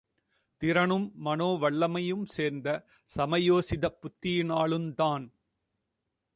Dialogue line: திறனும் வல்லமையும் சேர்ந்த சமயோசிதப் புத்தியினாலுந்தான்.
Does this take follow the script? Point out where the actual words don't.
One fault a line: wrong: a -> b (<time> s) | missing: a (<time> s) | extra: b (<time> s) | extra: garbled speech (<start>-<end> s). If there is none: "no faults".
extra: மனோ (1.1 s)